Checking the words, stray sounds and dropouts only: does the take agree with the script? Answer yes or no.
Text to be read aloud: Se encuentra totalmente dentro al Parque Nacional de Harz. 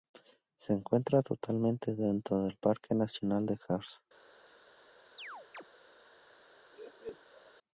no